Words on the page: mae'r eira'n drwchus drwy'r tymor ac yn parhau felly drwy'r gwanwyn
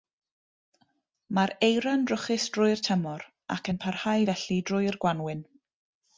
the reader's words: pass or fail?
pass